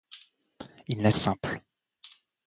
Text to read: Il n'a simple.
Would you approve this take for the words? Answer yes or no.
yes